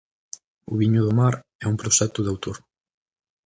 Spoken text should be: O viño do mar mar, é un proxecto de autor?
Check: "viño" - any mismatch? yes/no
no